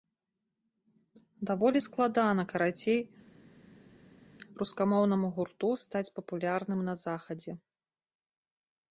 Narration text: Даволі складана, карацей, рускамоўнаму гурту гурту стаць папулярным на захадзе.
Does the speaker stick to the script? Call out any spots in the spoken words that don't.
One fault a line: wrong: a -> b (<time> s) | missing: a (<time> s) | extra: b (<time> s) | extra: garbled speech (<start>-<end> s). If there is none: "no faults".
missing: гурту (5.7 s)